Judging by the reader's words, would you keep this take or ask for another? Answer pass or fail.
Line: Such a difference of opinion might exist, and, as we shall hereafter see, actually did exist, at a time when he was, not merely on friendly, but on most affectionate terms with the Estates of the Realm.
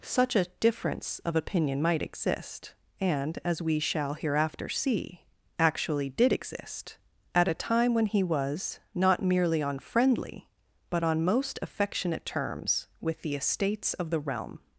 pass